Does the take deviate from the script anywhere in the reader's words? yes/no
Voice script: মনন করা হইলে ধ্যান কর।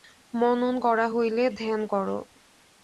no